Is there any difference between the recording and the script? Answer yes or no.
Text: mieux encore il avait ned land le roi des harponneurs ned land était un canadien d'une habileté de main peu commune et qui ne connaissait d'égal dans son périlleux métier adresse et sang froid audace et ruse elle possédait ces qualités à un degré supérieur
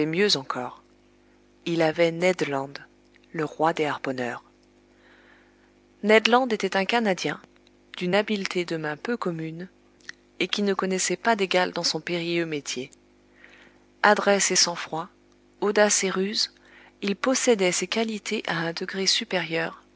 yes